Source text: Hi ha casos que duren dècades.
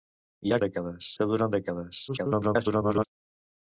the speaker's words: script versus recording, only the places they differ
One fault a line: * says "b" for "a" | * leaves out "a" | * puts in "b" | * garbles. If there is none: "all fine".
* says "dècades" for "casos"
* garbles